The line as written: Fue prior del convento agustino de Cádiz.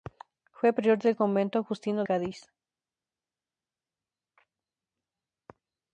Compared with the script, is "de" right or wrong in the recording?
wrong